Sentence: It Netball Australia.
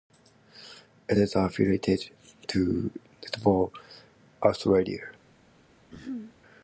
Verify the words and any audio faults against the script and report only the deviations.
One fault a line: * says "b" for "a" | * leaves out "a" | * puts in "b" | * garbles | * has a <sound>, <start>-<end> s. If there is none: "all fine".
* puts in "is affiliated to"
* has a throat clearing, 5.9-6.3 s